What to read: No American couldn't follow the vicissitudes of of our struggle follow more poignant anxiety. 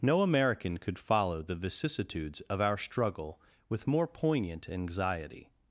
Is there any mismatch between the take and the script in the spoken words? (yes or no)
yes